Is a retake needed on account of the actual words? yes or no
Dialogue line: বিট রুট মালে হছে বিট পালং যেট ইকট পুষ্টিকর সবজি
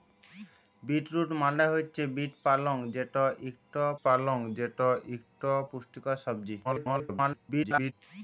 yes